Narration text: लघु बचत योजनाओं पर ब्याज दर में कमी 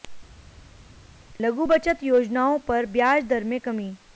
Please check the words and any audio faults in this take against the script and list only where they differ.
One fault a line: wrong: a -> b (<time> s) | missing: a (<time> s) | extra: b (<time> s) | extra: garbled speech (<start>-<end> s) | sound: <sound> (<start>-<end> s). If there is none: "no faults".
no faults